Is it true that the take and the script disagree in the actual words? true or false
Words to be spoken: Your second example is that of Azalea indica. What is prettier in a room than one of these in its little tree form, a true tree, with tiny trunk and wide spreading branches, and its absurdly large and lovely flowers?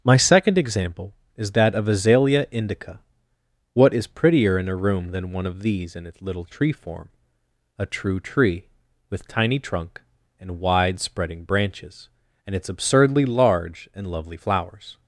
true